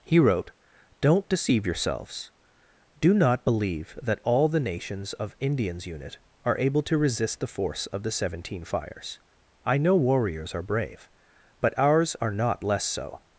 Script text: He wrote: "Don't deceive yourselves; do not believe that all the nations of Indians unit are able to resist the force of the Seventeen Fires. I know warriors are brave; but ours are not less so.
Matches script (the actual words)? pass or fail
pass